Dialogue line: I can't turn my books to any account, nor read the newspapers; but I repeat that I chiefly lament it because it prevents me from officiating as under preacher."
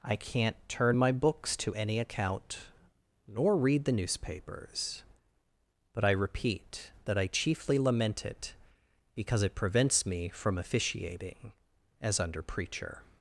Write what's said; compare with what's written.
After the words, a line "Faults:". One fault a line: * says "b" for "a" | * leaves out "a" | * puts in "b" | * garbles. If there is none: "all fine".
I can't turn my books to any account, nor read the newspapers; but I repeat that I chiefly lament it because it prevents me from officiating as under preacher."
Faults:
all fine